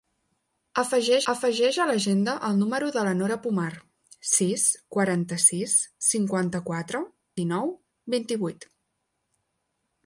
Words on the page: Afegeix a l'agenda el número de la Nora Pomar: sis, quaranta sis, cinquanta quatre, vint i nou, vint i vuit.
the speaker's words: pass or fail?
fail